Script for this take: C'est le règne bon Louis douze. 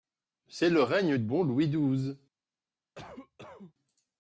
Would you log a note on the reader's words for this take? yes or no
no